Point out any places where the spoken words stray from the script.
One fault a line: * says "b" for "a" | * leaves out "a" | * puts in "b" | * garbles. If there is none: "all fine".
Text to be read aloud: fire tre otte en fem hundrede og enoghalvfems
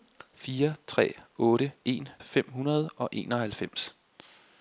all fine